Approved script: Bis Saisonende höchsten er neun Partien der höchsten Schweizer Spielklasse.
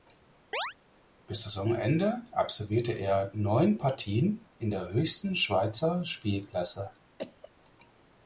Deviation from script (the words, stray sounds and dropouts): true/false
true